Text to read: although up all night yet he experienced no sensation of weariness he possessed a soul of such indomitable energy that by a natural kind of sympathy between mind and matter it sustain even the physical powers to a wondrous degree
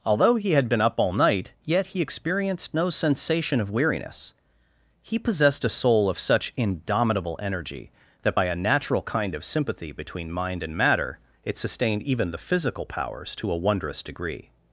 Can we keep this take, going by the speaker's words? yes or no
no